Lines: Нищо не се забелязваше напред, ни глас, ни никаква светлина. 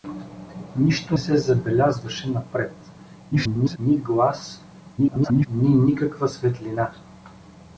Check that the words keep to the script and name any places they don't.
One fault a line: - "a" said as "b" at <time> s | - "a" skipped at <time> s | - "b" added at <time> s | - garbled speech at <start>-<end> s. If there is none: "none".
- "не" skipped at 1.2 s
- garbled speech at 3.3-3.8 s
- garbled speech at 5.0-5.5 s